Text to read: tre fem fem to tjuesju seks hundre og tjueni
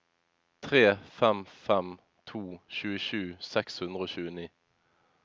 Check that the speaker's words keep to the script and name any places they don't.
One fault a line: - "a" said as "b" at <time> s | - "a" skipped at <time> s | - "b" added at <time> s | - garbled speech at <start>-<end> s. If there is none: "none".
none